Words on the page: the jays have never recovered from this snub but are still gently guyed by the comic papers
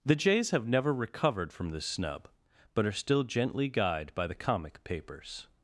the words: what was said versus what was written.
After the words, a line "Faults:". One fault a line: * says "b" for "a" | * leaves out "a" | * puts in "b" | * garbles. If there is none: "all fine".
the jays have never recovered from this snub but are still gently guyed by the comic papers
Faults:
all fine